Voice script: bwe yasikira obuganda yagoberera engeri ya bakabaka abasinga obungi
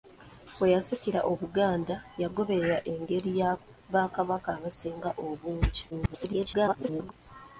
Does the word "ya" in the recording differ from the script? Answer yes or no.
no